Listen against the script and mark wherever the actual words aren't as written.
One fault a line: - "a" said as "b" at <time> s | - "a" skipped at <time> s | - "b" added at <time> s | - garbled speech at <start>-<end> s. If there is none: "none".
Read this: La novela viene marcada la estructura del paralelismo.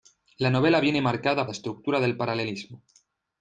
none